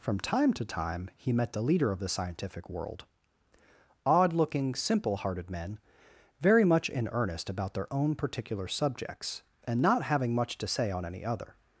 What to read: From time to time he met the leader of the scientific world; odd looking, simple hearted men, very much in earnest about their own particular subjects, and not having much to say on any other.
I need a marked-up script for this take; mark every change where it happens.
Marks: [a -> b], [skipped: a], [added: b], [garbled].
From time to time he met the leader of the scientific world; odd looking, simple hearted men, very much in earnest about their own particular subjects, and not having much to say on any other.